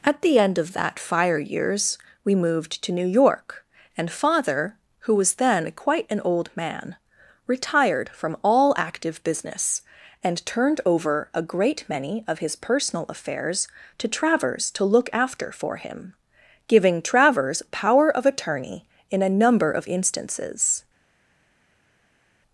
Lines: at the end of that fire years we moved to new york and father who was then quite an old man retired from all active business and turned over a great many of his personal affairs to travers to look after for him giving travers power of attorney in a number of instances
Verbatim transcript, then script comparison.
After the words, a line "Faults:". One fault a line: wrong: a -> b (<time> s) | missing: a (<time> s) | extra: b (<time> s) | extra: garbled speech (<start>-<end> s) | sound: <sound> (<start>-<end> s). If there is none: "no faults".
at the end of that fire years we moved to new york and father who was then quite an old man retired from all active business and turned over a great many of his personal affairs to travers to look after for him giving travers power of attorney in a number of instances
Faults:
no faults